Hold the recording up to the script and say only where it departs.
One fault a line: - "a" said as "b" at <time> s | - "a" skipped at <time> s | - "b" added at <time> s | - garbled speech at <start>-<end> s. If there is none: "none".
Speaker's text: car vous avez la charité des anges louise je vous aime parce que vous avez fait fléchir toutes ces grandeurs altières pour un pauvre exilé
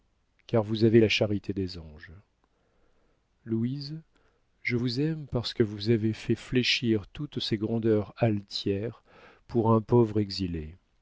none